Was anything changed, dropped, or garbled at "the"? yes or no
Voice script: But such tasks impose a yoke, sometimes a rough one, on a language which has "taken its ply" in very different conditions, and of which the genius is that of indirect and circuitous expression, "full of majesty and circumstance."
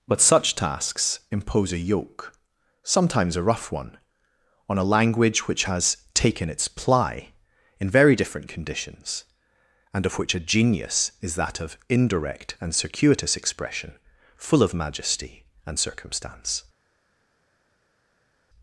yes